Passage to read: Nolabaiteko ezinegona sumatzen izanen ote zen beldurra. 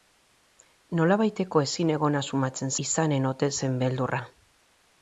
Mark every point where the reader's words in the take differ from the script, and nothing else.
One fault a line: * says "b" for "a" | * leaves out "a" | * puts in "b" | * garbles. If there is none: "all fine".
all fine